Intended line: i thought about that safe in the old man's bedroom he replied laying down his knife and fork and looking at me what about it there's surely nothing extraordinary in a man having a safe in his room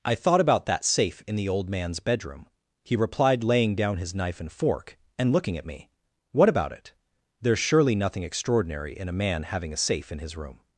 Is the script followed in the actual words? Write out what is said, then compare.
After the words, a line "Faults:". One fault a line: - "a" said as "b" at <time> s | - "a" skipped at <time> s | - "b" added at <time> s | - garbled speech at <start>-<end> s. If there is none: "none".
i thought about that safe in the old man's bedroom he replied laying down his knife and fork and looking at me what about it there's surely nothing extraordinary in a man having a safe in his room
Faults:
none